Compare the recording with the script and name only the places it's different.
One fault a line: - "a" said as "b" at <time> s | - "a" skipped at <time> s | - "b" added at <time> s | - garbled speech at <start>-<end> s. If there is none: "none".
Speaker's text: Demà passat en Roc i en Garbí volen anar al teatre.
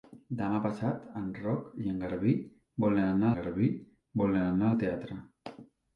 - "Garbí volen anar" added at 3.4 s